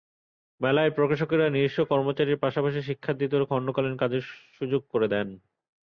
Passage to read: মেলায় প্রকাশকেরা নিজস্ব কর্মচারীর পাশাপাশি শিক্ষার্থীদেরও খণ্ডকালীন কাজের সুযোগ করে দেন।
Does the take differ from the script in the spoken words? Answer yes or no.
no